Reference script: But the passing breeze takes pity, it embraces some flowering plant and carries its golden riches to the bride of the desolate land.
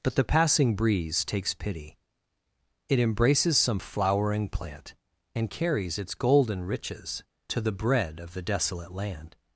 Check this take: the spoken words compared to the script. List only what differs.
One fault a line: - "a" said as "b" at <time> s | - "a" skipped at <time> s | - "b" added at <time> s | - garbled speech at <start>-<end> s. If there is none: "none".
- "bride" said as "bread" at 7.7 s